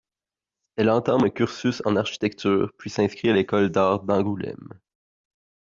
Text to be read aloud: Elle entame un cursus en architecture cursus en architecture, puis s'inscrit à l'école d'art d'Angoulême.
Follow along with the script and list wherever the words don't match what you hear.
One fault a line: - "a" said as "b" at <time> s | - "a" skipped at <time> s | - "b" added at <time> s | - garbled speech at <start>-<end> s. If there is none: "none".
- "cursus en architecture" skipped at 2.7 s